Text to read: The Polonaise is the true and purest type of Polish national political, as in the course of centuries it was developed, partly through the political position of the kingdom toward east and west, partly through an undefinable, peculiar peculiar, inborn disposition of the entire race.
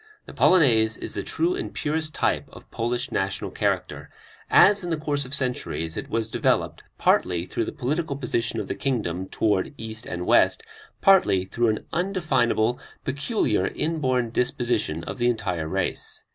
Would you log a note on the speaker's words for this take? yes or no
yes